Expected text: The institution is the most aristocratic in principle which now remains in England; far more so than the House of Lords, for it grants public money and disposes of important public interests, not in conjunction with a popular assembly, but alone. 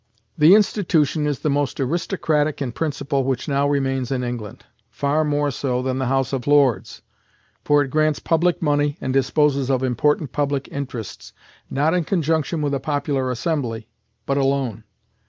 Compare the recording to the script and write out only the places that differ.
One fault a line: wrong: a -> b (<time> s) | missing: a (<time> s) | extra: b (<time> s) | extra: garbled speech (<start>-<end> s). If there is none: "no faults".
no faults